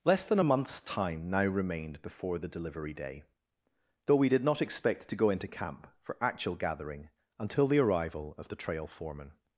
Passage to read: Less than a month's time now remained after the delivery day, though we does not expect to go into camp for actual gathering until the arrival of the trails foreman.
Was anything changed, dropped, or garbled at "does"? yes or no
yes